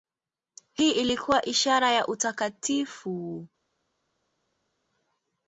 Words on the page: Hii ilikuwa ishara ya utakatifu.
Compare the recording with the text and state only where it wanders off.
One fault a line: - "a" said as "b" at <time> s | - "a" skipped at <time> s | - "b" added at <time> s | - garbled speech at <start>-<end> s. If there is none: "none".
none